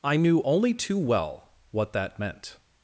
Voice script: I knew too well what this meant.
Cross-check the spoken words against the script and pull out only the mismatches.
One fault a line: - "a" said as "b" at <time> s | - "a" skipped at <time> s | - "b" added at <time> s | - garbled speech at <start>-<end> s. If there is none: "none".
- "only" added at 0.5 s
- "this" said as "that" at 1.9 s